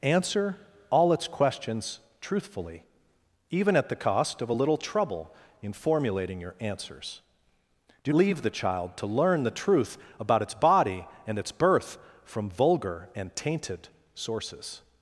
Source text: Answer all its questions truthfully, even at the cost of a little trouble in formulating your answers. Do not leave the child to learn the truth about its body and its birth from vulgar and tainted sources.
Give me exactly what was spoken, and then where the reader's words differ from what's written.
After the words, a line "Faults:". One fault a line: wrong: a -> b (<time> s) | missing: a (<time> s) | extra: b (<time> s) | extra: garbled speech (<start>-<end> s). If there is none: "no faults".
Answer all its questions truthfully, even at the cost of a little trouble in formulating your answers. Do leave the child to learn the truth about its body and its birth from vulgar and tainted sources.
Faults:
missing: not (8.1 s)